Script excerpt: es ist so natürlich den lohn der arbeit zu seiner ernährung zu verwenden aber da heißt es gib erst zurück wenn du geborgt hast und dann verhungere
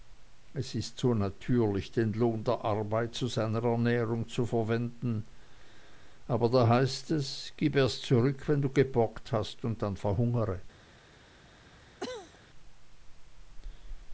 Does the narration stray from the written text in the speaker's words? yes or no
no